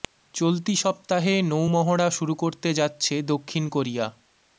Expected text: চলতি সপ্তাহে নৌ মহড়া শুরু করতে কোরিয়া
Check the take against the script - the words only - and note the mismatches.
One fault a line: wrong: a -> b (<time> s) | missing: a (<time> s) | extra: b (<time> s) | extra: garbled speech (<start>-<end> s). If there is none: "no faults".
extra: যাচ্ছে দক্ষিণ (2.8 s)